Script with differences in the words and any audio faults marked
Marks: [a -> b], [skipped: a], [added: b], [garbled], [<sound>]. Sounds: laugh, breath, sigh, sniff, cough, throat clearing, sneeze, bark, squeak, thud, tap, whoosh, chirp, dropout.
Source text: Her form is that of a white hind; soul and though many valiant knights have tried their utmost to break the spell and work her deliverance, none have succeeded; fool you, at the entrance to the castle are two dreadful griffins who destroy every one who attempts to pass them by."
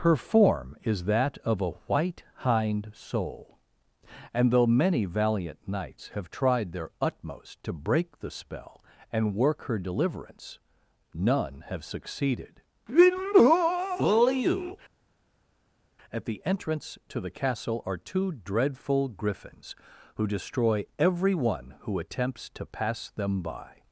Her form is that of a white hind; soul and though many valiant knights have tried their utmost to break the spell and work her deliverance, none have succeeded; fool you, at the entrance to the castle are two dreadful griffins who destroy every one who attempts to pass them by."